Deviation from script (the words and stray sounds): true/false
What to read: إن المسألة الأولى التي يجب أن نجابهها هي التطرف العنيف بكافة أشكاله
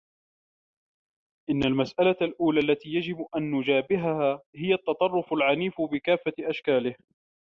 false